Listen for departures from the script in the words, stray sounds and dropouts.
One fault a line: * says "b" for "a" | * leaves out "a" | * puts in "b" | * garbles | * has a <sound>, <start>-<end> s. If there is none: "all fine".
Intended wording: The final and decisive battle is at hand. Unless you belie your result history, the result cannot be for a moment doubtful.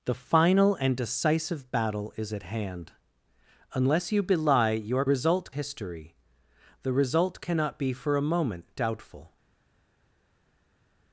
all fine